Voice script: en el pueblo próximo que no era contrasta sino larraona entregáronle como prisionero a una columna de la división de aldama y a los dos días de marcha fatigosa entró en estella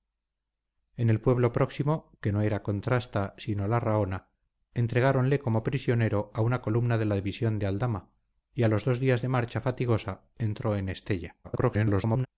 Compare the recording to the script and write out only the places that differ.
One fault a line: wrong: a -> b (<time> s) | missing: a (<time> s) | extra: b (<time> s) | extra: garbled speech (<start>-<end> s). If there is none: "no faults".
extra: garbled speech (11.4-12.3 s)